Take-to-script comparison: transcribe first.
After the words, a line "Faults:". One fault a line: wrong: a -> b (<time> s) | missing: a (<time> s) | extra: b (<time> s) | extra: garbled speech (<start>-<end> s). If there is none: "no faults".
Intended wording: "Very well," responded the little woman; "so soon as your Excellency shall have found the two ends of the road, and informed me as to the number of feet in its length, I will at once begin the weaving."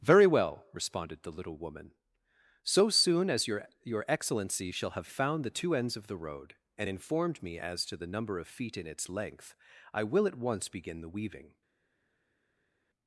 "Very well," responded the little woman; "so soon as your your Excellency shall have found the two ends of the road, and informed me as to the number of feet in its length, I will at once begin the weaving."
Faults:
extra: your (3.8 s)